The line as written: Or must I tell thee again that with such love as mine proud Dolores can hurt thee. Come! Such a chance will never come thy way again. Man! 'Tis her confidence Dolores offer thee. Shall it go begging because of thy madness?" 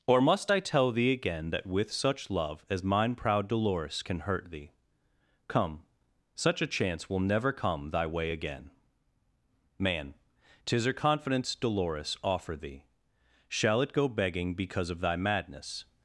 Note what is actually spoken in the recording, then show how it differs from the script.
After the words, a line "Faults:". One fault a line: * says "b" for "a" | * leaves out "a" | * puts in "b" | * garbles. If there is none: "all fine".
Or must I tell thee again that with such love as mine proud Dolores can hurt thee. Come! Such a chance will never come thy way again. Man! 'Tis her confidence Dolores offer thee. Shall it go begging because of thy madness?"
Faults:
all fine